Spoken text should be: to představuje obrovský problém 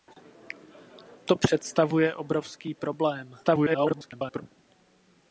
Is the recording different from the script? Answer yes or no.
yes